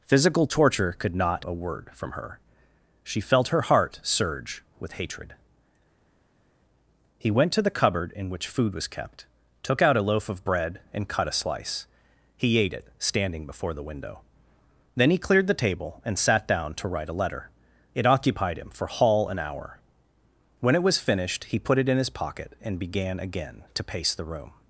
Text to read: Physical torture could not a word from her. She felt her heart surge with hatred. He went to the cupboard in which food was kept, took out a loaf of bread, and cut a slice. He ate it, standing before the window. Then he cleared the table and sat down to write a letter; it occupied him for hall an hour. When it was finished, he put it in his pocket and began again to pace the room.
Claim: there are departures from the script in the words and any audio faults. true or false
false